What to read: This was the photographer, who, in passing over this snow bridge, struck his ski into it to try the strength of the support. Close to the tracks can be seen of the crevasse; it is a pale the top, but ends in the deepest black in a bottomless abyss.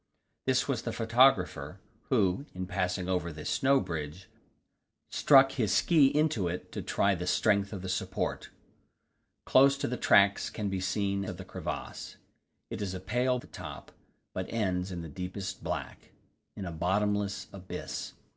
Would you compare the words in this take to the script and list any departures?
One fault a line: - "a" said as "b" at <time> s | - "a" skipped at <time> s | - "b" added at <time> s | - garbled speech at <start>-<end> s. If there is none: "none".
none